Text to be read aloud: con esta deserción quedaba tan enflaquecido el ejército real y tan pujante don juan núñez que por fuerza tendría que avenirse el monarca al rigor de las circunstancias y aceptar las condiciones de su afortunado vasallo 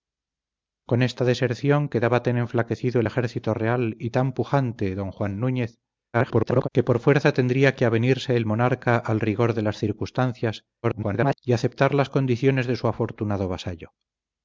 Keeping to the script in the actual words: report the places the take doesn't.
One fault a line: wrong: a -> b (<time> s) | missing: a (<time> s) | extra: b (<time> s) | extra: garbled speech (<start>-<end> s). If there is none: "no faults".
extra: garbled speech (6.1-6.7 s)
extra: garbled speech (10.8-11.4 s)